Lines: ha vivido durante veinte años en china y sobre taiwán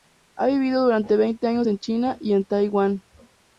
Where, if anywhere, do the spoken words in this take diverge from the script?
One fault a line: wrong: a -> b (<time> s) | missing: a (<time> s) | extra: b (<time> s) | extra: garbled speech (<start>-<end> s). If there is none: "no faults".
wrong: sobre -> en (2.3 s)